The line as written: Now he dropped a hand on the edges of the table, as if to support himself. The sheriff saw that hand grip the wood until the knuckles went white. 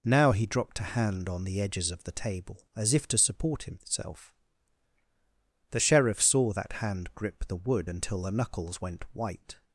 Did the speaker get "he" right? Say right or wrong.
right